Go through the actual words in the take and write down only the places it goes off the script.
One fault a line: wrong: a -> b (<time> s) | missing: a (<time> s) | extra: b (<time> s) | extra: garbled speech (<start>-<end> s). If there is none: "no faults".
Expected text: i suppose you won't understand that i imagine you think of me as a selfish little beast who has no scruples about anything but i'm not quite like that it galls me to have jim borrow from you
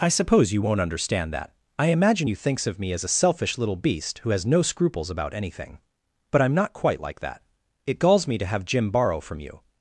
wrong: think -> thinks (2.3 s)